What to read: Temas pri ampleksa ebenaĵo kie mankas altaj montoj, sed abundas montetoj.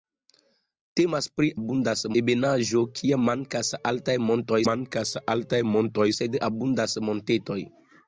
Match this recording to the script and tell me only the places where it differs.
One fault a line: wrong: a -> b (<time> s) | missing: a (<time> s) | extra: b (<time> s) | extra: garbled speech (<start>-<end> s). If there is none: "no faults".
wrong: ampleksa -> abundas (1.6 s)
extra: mankas altaj montoj (4.7 s)